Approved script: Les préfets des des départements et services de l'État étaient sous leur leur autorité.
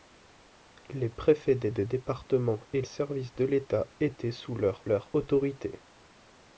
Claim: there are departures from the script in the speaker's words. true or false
false